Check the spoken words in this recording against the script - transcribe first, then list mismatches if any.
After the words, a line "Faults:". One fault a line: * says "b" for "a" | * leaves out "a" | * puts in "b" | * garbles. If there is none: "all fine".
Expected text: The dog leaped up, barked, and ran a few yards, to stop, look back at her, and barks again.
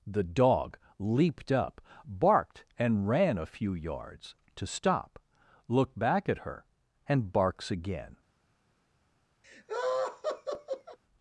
The dog leaped up, barked, and ran a few yards, to stop, look back at her, and barks again.
Faults:
all fine